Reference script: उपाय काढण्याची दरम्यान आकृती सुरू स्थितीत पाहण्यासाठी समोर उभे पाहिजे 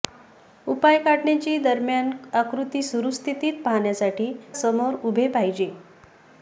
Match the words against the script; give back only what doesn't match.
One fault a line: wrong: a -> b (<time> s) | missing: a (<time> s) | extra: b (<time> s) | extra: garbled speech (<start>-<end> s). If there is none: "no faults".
no faults